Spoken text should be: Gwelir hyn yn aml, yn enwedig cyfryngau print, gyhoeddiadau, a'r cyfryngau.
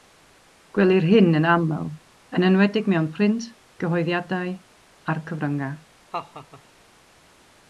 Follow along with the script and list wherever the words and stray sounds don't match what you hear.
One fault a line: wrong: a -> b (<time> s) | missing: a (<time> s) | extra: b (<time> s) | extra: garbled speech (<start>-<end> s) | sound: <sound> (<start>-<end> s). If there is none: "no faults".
wrong: cyfryngau -> mewn (2.9 s)
sound: laugh (6.1-6.6 s)